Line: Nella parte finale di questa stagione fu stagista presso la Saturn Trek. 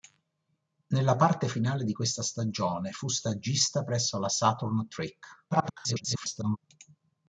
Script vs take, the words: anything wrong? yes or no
yes